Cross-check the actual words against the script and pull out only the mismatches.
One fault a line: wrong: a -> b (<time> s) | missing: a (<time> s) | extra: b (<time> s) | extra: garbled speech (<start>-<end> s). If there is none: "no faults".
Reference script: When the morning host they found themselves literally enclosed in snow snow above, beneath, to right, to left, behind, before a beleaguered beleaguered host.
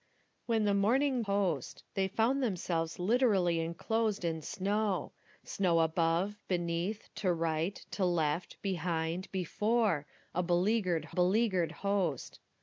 no faults